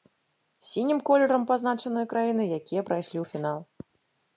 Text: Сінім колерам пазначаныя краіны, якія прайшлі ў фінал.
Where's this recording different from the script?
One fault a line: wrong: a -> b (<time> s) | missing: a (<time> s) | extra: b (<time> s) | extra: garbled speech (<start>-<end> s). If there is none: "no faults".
no faults